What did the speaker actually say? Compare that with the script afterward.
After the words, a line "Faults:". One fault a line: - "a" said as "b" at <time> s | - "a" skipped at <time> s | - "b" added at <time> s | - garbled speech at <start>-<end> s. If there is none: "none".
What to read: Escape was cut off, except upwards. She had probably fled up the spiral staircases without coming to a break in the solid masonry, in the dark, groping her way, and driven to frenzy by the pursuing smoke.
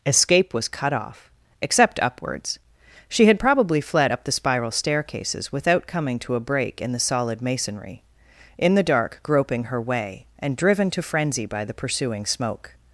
Escape was cut off, except upwards. She had probably fled up the spiral staircases without coming to a break in the solid masonry, in the dark, groping her way, and driven to frenzy by the pursuing smoke.
Faults:
none